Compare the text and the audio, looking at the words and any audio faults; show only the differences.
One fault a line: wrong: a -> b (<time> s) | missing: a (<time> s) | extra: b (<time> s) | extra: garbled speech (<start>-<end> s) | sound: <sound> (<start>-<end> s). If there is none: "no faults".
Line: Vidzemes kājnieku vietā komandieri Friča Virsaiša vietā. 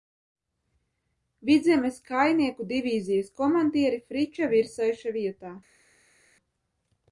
wrong: vietā -> divīzijas (2.7 s)